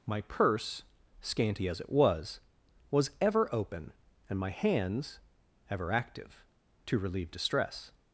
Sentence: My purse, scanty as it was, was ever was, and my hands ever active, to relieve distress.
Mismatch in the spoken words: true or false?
true